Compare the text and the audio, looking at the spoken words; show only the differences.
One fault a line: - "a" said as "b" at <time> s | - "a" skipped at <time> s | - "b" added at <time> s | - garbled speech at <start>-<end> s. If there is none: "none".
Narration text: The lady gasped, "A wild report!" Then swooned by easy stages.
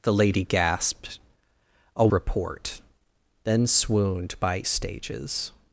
- "wild" skipped at 2.1 s
- "easy" skipped at 4.6 s